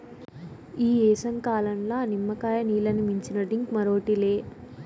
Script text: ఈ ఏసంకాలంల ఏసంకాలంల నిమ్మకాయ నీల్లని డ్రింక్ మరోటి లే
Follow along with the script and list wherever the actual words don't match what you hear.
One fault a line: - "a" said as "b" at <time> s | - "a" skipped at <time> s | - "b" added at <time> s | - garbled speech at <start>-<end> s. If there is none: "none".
- "ఏసంకాలంల" skipped at 1.9 s
- "మించిన" added at 3.0 s